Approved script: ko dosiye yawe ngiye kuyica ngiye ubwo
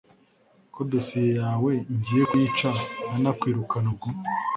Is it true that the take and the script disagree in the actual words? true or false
true